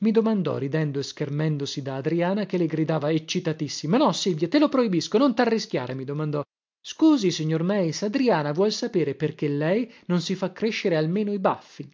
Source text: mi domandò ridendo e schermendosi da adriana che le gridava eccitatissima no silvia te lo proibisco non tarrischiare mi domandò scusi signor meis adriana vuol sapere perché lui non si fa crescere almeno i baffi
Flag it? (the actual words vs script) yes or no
yes